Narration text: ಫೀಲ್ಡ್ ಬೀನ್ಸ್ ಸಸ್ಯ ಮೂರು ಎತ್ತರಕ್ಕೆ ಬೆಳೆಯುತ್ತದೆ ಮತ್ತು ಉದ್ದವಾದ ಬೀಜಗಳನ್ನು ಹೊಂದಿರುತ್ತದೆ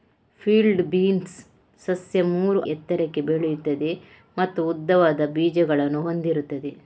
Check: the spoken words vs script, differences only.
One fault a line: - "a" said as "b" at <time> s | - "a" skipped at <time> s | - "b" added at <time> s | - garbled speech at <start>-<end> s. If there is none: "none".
none